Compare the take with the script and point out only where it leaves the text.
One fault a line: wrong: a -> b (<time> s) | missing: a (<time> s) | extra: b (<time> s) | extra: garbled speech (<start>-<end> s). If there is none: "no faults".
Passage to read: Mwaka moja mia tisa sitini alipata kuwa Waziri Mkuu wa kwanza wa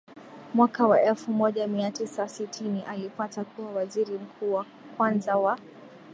extra: wa elfu (0.9 s)